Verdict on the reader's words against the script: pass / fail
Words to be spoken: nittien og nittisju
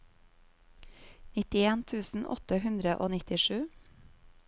fail